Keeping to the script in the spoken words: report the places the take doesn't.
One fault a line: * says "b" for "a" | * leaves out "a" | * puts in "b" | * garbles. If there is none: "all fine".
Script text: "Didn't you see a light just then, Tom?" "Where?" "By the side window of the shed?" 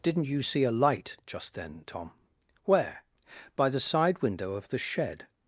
all fine